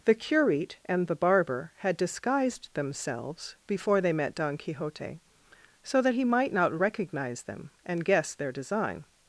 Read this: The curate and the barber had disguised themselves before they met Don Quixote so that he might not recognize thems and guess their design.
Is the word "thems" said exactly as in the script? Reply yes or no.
no